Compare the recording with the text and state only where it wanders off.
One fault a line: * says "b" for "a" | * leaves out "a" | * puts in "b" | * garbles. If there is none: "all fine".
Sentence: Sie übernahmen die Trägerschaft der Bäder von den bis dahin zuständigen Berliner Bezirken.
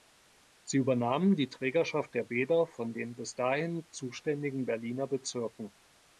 all fine